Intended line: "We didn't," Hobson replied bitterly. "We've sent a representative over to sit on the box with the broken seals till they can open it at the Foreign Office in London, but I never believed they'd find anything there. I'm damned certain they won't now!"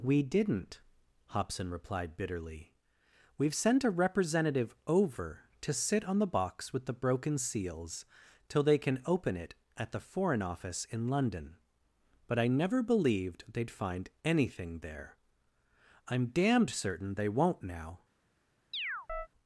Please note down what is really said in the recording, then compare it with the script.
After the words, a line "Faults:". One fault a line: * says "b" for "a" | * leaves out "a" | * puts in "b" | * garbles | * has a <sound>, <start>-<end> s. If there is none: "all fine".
"We didn't," Hobson replied bitterly. "We've sent a representative over to sit on the box with the broken seals till they can open it at the Foreign Office in London, but I never believed they'd find anything there. I'm damned certain they won't now!"
Faults:
* has a chirp, 18.7-19.3 s